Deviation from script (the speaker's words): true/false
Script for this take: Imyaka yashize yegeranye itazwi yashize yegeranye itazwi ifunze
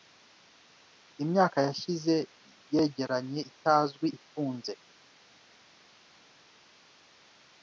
true